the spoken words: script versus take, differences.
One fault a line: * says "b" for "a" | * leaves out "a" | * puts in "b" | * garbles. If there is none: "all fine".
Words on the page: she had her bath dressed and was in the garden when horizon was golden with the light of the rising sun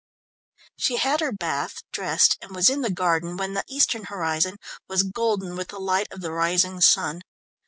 * puts in "the eastern"